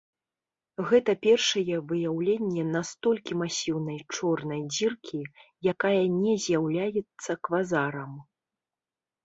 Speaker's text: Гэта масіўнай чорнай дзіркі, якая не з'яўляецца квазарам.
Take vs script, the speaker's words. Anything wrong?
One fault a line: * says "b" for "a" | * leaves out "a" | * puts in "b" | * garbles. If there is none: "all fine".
* puts in "першае выяўленне настолькі"